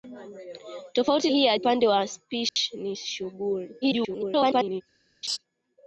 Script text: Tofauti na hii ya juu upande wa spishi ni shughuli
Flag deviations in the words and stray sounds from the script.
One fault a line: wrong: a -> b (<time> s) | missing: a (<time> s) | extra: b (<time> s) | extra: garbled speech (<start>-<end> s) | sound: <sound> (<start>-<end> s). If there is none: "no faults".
missing: na (1.3 s)
missing: juu (1.6 s)
sound: dropout (2.5-2.6 s)
extra: garbled speech (3.8-4.8 s)
sound: laugh (5.2-5.4 s)